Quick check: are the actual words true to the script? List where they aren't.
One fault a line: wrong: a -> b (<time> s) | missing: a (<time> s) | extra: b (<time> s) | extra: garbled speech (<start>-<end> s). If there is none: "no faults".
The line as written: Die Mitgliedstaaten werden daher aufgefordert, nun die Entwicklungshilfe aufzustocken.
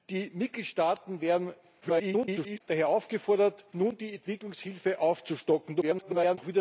extra: garbled speech (1.8-2.6 s)
extra: garbled speech (5.8-6.4 s)